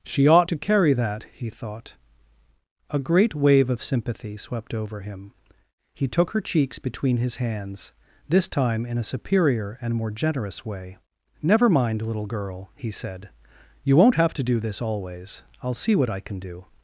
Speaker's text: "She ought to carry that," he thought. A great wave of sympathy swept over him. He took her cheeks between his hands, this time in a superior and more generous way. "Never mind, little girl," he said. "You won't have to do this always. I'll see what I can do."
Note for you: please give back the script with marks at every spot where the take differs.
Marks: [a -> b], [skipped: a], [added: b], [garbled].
"She ought to carry that," he thought. A great wave of sympathy swept over him. He took her cheeks between his hands, this time in a superior and more generous way. "Never mind, little girl," he said. "You won't have to do this always. I'll see what I can do."